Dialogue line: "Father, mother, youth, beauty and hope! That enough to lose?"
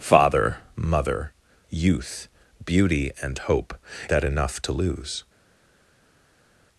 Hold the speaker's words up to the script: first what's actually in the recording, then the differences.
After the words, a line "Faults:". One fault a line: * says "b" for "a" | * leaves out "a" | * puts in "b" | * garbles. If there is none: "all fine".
"Father, mother, youth, beauty and hope! That enough to lose?"
Faults:
all fine